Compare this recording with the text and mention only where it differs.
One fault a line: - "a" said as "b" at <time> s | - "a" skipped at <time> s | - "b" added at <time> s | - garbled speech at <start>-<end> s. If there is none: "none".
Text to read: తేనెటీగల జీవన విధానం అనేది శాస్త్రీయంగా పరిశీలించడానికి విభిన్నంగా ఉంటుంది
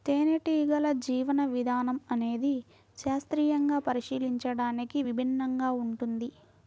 none